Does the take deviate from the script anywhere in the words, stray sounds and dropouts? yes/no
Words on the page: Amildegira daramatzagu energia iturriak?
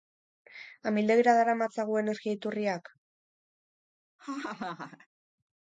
yes